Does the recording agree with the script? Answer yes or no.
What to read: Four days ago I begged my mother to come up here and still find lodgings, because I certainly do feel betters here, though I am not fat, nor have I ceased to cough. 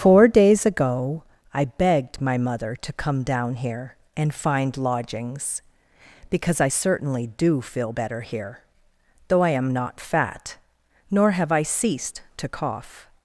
no